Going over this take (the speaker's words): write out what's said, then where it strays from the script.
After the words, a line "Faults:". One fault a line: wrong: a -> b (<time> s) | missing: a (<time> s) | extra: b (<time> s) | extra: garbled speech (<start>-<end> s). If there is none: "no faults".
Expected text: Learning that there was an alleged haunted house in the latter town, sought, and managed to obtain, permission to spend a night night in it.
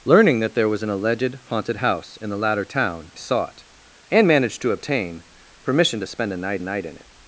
Learning that there was an alleged haunted house in the latter town, sought, and managed to obtain, permission to spend a night night in it.
Faults:
no faults